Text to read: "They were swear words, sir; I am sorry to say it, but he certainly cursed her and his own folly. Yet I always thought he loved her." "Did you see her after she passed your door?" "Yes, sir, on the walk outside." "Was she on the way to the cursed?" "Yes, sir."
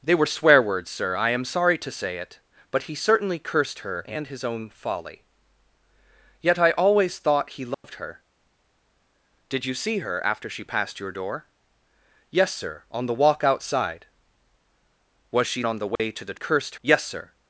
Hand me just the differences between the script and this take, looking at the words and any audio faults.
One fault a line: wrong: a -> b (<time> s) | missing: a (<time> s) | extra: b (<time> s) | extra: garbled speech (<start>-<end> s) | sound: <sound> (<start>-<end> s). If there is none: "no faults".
sound: dropout (7.7-7.8 s)
sound: dropout (16.0-16.0 s)